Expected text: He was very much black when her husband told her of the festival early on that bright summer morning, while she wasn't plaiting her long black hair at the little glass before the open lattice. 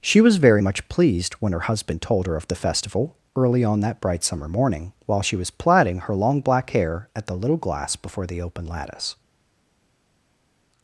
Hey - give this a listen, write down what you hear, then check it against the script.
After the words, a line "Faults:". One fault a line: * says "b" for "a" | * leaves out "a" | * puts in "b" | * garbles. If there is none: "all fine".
She was very much pleased when her husband told her of the festival early on that bright summer morning, while she was plaiting her long black hair at the little glass before the open lattice.
Faults:
* says "She" for "He"
* says "pleased" for "black"
* says "was" for "wasn't"